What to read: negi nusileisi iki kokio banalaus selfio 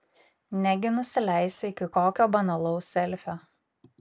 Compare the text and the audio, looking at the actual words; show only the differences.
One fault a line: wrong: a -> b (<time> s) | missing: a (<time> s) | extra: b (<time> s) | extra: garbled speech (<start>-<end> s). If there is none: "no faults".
no faults